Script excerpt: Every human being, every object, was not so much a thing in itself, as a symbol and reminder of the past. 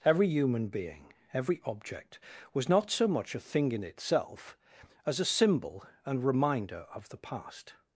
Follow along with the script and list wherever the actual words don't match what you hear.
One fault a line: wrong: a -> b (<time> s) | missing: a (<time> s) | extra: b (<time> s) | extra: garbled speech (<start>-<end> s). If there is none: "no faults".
no faults